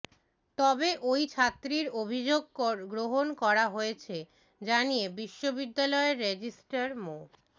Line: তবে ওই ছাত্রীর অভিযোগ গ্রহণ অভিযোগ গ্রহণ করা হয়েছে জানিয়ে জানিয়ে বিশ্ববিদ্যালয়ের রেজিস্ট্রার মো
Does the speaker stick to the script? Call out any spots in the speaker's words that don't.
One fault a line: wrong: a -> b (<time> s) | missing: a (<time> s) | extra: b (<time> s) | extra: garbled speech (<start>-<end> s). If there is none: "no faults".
missing: অভিযোগ গ্রহণ (3.3 s)
missing: জানিয়ে (5.0 s)